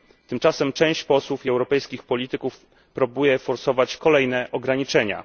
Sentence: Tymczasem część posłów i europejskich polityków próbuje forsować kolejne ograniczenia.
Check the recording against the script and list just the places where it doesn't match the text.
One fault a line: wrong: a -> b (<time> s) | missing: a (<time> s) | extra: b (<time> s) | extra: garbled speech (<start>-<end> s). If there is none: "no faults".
no faults